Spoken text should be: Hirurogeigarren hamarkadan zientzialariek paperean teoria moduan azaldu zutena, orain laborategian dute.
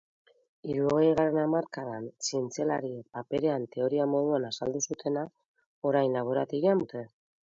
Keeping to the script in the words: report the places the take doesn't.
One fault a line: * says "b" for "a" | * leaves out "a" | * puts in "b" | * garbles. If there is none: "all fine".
all fine